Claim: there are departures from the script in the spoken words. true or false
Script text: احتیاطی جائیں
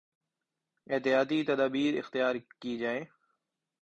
true